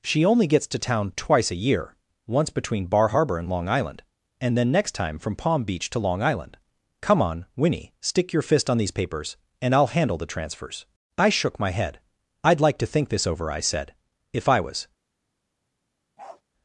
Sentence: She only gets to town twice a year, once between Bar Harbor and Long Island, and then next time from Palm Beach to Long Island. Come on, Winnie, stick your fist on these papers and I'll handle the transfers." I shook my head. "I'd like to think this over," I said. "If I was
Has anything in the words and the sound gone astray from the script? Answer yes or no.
yes